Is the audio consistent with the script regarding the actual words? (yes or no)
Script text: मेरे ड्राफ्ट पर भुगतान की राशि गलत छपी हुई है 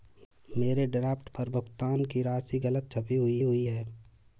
no